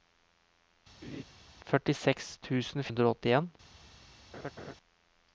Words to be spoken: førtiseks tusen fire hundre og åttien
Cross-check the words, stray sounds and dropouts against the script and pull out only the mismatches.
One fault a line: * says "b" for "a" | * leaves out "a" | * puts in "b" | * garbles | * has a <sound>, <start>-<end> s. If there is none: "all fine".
* has a laugh, 1.0-1.2 s
* leaves out "fire"
* has a laugh, 4.3-4.7 s